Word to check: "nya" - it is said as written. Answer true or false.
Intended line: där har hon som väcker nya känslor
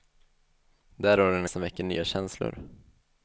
true